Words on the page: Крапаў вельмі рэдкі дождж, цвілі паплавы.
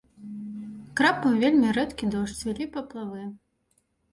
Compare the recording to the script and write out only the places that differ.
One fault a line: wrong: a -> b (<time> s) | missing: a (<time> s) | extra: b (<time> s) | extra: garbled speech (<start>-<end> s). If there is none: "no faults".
no faults